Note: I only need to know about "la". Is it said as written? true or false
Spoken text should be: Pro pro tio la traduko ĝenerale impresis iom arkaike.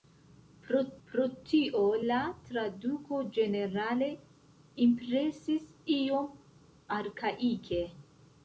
true